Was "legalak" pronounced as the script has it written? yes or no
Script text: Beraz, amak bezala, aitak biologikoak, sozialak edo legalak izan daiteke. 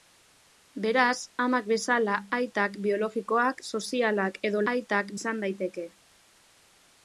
no